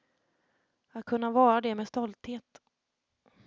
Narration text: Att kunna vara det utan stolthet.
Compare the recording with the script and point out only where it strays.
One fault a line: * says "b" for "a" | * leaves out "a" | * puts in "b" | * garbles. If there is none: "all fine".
* says "med" for "utan"